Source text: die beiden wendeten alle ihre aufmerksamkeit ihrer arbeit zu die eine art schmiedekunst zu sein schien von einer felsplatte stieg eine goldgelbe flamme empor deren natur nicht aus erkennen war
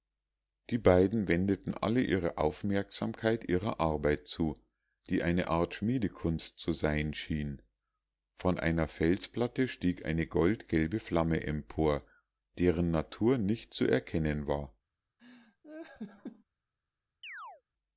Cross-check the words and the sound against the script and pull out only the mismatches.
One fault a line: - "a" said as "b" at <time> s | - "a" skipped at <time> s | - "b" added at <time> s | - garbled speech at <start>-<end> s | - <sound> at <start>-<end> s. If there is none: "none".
- "aus" said as "zu" at 13.7 s
- laugh at 15.2-16.4 s
- chirp at 17.2-17.6 s